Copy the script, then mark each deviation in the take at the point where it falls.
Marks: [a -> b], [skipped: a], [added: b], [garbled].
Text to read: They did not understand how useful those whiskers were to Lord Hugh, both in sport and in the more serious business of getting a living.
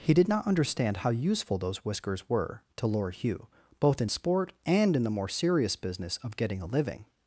[They -> He] did not understand how useful those whiskers were to Lord Hugh, both in sport and in the more serious business of getting a living.